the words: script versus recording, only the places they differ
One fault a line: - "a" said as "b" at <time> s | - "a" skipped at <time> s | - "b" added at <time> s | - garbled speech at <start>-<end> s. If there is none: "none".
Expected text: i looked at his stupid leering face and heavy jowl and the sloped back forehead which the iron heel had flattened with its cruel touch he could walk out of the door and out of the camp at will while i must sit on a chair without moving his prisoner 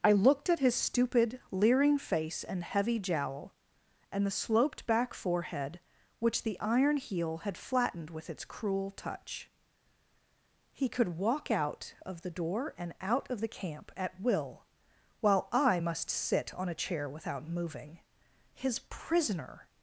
none